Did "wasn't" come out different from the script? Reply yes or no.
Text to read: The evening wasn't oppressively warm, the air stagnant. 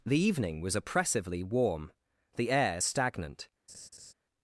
yes